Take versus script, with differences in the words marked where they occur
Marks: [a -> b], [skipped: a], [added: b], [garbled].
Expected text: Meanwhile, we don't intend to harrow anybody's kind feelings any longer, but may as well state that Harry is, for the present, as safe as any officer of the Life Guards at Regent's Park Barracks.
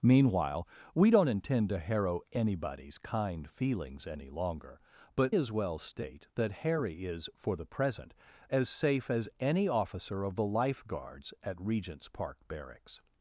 Meanwhile, we don't intend to harrow anybody's kind feelings any longer, but [skipped: may] as well state that Harry is, for the present, as safe as any officer of the Life Guards at Regent's Park Barracks.